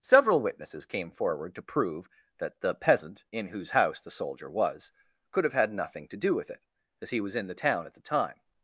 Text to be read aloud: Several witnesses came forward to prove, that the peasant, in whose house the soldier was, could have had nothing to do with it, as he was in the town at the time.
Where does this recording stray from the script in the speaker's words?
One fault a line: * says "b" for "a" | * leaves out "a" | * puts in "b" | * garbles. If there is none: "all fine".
all fine